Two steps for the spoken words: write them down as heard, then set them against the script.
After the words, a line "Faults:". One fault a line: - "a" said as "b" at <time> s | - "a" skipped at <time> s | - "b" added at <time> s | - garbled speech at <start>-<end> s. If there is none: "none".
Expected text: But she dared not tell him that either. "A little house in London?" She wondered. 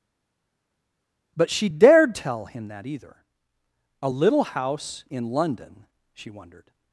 But she dared tell him that either. "A little house in London?" She wondered.
Faults:
- "not" skipped at 2.1 s